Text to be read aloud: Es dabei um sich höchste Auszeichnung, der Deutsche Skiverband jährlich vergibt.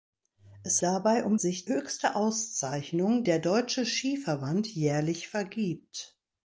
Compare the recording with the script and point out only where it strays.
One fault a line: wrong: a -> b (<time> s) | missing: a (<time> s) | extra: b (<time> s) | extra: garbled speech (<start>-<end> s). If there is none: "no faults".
no faults